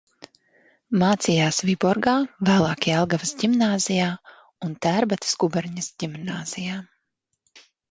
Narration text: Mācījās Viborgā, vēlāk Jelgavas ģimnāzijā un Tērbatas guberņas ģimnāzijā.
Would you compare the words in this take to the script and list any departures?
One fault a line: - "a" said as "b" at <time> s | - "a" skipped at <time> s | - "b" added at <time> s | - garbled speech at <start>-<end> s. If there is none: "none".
none